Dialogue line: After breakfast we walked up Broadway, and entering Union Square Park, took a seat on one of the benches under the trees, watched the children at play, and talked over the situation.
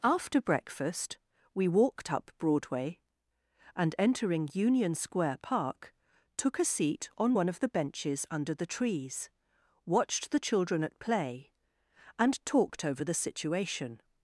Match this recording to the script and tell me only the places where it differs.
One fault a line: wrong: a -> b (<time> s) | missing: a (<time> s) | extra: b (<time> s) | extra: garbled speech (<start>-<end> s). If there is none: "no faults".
no faults